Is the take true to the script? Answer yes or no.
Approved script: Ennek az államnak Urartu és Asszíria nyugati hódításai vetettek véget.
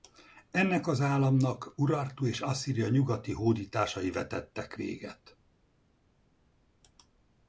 yes